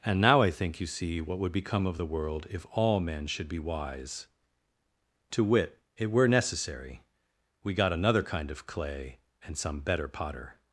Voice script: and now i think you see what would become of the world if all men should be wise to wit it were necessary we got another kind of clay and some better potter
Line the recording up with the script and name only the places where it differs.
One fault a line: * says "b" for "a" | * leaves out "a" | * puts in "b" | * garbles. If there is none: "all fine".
all fine